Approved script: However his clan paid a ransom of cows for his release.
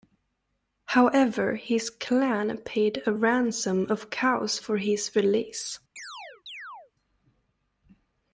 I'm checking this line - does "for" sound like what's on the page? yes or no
yes